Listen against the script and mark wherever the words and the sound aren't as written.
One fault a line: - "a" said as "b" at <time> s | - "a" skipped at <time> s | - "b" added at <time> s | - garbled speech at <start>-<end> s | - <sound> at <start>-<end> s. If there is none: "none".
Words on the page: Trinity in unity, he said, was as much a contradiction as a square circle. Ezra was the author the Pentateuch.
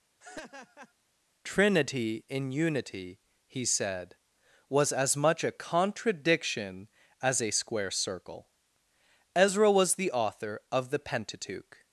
- laugh at 0.2-0.9 s
- "of" added at 10.7 s